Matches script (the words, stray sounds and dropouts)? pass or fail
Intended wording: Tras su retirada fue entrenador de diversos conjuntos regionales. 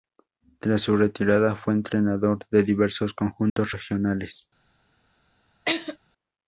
fail